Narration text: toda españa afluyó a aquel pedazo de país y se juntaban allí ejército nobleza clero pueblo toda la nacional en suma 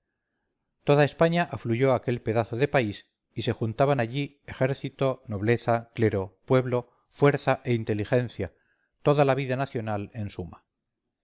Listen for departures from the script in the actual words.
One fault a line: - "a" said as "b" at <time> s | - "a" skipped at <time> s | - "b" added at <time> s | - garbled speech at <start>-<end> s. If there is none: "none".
- "fuerza e inteligencia" added at 7.1 s
- "vida" added at 9.4 s